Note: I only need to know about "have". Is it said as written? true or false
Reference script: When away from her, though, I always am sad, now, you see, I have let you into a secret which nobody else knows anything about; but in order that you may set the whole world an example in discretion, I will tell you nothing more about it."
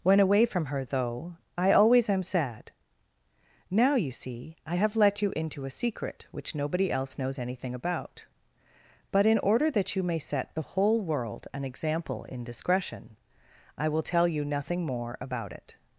true